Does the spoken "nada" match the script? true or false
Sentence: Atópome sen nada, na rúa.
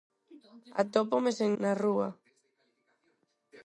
false